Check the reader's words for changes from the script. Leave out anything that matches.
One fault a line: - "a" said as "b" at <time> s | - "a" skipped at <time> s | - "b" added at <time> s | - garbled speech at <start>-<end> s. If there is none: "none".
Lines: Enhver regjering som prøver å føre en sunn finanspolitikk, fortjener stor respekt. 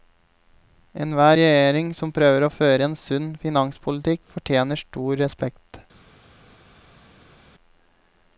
none